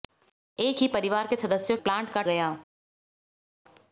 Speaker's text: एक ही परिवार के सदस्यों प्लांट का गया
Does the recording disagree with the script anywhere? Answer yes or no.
no